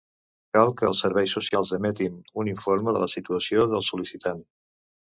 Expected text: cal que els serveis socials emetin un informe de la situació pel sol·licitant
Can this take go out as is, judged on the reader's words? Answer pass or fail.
fail